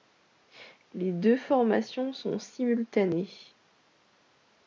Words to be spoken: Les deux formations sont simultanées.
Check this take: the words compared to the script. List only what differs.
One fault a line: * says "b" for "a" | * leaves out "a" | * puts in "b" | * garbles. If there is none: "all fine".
all fine